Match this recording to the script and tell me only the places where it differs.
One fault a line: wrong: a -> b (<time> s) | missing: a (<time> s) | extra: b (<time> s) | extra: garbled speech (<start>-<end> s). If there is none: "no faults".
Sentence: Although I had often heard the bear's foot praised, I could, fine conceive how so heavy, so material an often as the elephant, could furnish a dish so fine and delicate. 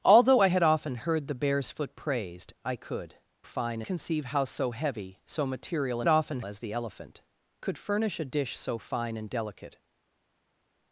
no faults